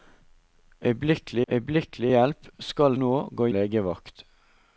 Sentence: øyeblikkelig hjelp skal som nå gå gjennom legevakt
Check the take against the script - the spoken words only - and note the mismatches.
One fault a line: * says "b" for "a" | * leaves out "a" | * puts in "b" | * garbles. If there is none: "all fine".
* puts in "øyeblikkelig"
* leaves out "som"
* leaves out "gjennom"